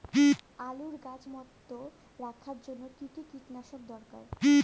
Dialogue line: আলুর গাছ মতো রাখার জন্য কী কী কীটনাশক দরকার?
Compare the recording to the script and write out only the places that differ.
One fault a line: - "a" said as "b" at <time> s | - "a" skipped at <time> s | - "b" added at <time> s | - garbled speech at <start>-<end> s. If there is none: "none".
none